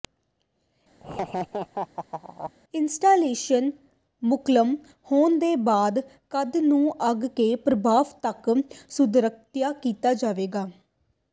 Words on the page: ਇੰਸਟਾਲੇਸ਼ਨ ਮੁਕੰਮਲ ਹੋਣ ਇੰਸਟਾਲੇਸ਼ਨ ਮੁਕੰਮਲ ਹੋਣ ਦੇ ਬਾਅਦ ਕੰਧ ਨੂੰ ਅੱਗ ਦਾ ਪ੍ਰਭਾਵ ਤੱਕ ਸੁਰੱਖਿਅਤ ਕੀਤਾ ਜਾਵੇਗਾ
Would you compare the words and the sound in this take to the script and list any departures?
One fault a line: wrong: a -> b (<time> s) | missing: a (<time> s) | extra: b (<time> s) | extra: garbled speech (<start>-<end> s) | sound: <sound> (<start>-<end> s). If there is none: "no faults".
sound: laugh (1.0-2.5 s)
missing: ਇੰਸਟਾਲੇਸ਼ਨ ਮੁਕੰਮਲ ਹੋਣ (5.4 s)
wrong: ਦਾ -> ਦੇ (7.4 s)